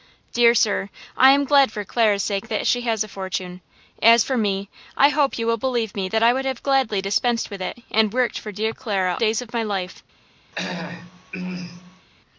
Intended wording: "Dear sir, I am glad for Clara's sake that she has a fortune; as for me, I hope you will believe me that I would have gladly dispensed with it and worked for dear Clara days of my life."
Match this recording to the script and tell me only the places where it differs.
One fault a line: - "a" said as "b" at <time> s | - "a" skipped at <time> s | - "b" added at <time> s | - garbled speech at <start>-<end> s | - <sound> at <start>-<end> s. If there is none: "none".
- throat clearing at 10.5-12.1 s